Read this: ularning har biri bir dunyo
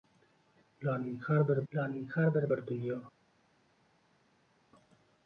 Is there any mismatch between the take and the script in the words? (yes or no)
yes